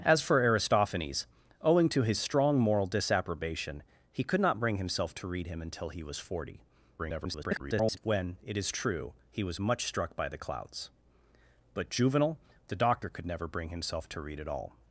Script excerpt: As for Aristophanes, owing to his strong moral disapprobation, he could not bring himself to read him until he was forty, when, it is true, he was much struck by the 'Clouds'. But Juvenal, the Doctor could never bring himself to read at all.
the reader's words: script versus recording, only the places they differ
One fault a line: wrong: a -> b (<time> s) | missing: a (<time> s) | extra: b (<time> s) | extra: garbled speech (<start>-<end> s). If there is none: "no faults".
extra: garbled speech (7.0-8.0 s)